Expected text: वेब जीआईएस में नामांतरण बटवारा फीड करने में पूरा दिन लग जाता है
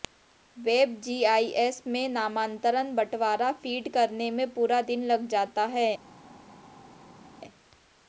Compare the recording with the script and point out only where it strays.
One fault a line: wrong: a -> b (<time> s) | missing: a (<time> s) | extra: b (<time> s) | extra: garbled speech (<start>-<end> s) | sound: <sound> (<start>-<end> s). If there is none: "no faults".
no faults